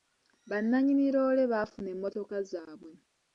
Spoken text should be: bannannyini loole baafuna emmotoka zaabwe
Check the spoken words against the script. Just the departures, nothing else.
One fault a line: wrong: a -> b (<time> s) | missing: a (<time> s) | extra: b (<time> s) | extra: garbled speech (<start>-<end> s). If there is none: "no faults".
no faults